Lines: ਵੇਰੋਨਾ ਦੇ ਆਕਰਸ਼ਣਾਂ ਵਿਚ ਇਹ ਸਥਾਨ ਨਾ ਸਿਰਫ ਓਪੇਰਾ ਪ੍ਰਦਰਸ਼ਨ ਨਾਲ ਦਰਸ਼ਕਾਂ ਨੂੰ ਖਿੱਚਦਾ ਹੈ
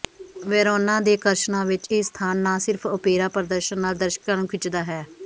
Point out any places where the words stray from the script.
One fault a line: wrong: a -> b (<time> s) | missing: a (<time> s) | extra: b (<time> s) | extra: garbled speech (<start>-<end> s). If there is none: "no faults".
no faults